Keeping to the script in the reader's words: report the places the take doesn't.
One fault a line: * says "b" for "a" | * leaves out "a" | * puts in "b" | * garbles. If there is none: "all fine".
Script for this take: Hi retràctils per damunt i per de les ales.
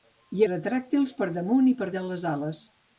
all fine